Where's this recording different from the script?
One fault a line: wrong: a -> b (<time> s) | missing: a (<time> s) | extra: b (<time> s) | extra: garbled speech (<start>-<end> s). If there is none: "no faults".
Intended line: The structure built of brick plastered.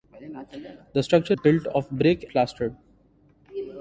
no faults